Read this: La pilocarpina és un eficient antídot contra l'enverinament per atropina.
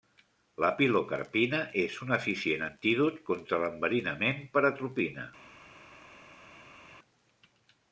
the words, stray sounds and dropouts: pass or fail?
pass